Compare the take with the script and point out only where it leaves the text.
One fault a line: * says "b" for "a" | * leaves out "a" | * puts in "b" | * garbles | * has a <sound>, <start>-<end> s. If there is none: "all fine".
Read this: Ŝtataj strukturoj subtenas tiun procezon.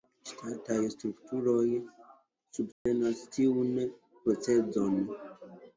* has a dropout, 2.7-2.9 s